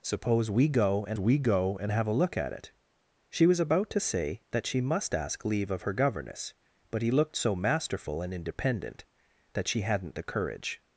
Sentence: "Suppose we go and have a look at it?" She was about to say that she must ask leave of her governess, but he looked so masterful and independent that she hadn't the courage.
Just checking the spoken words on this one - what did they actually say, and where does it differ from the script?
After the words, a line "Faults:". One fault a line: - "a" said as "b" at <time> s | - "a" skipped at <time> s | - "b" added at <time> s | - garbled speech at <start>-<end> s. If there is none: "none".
"Suppose we go and we go and have a look at it?" She was about to say that she must ask leave of her governess, but he looked so masterful and independent that she hadn't the courage.
Faults:
- "we go and" added at 1.2 s